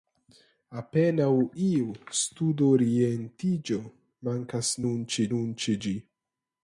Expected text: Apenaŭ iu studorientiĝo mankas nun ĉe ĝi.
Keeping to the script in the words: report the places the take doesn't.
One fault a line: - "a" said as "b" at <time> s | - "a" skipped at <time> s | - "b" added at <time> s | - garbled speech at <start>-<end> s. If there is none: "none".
- "nun ĉe" added at 5.4 s